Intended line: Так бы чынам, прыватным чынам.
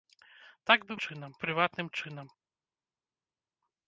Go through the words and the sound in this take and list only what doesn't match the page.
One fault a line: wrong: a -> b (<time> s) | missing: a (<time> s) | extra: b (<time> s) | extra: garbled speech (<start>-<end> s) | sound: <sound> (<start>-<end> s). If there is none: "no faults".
no faults